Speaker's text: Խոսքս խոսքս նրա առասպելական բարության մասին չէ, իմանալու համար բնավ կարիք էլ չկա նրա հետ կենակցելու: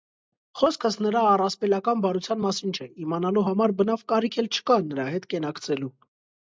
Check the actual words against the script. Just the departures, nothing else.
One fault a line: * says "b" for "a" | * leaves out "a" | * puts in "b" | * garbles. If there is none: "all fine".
* leaves out "խոսքս"